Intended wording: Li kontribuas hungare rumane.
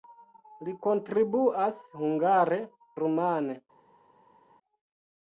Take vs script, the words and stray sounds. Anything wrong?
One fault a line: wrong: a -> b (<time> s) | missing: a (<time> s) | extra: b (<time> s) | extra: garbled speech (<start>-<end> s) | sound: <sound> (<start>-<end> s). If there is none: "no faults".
no faults